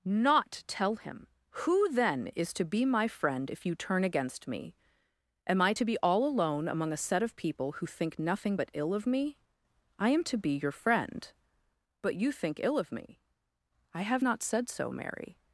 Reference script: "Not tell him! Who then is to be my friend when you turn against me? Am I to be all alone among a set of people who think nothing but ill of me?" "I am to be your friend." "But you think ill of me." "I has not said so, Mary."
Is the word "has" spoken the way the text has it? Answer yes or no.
no